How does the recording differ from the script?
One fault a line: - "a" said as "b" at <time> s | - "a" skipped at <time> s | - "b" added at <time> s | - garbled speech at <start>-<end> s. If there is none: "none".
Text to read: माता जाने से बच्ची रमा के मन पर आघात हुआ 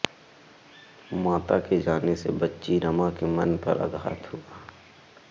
- "के" added at 1.6 s